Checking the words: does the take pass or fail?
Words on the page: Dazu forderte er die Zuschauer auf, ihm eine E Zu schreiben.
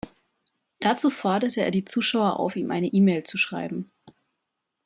fail